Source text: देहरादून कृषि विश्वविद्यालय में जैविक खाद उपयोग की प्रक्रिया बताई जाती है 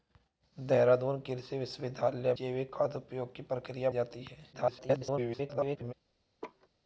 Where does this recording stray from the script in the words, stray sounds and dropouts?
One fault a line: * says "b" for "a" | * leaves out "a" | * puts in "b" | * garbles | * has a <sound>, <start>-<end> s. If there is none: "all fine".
* leaves out "में"
* leaves out "बताई"
* garbles
* has a laugh, 6.4-6.7 s